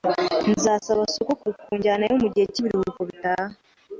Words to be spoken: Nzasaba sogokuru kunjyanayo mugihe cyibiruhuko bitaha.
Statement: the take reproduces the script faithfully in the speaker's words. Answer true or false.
true